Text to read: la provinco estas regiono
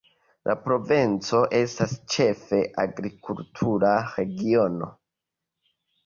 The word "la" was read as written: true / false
true